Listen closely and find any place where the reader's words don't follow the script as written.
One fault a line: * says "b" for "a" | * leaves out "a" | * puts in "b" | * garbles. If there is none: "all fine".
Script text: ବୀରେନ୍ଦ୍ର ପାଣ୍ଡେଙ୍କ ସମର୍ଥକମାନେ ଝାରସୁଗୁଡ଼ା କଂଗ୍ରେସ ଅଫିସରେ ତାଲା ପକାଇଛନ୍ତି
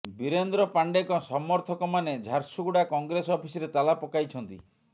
all fine